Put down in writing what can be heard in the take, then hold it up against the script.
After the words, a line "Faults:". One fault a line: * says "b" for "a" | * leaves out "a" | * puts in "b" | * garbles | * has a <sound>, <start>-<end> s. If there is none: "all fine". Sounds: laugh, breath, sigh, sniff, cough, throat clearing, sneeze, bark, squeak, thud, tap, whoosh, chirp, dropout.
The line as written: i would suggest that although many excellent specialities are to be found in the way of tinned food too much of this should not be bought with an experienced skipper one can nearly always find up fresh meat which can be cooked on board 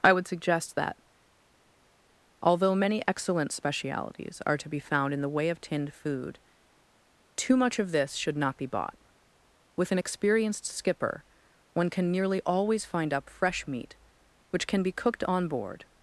i would suggest that although many excellent specialities are to be found in the way of tinned food too much of this should not be bought with an experienced skipper one can nearly always find up fresh meat which can be cooked on board
Faults:
all fine